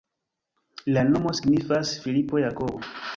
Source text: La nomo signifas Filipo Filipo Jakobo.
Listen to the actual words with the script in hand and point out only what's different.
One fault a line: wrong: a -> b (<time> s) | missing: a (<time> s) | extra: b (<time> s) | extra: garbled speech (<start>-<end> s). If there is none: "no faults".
missing: Filipo (2.4 s)